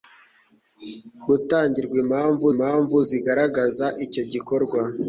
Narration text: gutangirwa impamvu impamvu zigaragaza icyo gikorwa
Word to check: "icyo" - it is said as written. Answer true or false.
true